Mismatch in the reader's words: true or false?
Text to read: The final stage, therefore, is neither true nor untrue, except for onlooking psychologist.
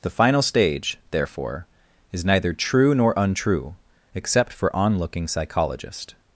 false